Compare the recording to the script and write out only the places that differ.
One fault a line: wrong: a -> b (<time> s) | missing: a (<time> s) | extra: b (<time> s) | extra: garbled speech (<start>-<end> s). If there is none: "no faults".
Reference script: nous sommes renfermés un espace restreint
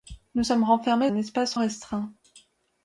no faults